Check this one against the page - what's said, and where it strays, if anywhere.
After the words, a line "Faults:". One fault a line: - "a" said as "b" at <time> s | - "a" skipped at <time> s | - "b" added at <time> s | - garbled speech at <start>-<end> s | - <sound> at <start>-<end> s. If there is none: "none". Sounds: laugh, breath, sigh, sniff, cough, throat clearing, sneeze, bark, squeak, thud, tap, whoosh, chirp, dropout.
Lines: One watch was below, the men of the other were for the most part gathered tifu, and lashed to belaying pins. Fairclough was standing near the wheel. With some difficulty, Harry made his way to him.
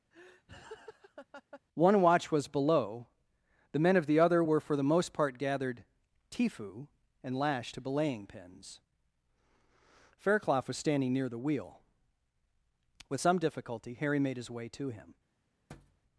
One watch was below, the men of the other were for the most part gathered tifu, and lashed to belaying pins. Fairclough was standing near the wheel. With some difficulty, Harry made his way to him.
Faults:
- laugh at 0.1-1.6 s
- thud at 15.7-16.0 s